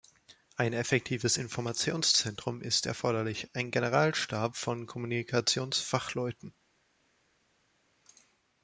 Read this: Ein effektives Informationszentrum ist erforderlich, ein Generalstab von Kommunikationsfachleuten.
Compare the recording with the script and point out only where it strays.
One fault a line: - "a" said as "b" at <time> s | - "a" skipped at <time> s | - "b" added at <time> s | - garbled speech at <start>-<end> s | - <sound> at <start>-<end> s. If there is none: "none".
none